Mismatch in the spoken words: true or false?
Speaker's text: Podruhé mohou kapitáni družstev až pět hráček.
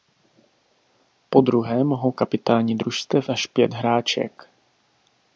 false